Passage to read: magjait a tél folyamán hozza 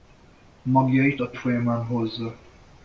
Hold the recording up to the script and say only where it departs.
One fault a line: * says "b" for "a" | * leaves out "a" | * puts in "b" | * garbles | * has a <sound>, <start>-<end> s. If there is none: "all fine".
* leaves out "tél"